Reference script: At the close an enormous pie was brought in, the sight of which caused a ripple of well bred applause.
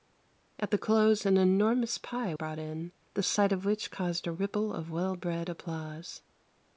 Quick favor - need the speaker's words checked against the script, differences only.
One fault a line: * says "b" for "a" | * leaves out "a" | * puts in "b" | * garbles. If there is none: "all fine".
* leaves out "was"